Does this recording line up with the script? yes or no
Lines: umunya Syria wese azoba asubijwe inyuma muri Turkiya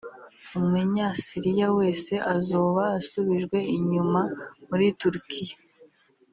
yes